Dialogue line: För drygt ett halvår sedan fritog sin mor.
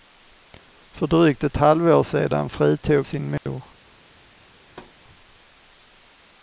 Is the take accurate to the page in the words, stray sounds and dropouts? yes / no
no